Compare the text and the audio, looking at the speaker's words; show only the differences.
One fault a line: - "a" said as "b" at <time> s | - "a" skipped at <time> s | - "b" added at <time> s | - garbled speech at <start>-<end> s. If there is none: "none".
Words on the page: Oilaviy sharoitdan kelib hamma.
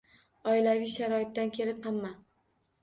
none